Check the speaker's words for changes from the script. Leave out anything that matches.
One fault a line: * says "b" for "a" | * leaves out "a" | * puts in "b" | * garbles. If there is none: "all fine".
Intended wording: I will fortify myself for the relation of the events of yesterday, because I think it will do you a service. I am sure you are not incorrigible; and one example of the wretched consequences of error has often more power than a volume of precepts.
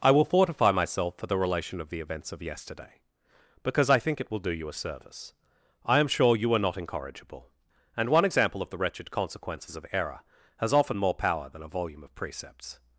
all fine